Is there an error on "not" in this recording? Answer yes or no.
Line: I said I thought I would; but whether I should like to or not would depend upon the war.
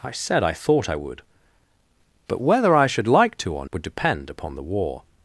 yes